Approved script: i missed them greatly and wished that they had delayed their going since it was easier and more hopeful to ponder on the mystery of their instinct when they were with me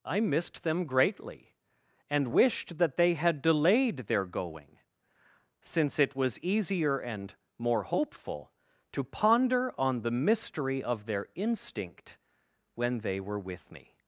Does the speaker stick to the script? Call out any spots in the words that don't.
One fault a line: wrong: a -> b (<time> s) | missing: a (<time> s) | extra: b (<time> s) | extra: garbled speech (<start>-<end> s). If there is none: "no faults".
no faults